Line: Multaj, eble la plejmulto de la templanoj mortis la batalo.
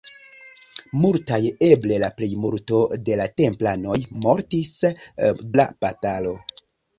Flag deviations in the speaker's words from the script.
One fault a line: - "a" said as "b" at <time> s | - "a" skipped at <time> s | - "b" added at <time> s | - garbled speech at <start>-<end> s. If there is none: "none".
none